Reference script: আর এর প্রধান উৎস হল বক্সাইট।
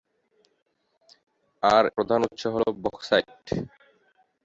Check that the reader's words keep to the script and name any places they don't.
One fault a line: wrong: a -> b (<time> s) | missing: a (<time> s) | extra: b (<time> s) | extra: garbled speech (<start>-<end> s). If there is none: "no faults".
missing: এর (1.9 s)